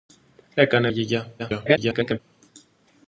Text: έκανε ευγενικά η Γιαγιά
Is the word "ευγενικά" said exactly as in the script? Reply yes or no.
no